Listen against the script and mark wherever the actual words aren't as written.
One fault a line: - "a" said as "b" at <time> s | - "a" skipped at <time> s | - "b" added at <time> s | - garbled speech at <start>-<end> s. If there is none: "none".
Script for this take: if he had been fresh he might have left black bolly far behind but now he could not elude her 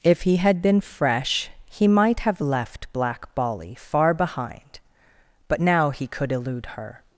- "not" skipped at 6.3 s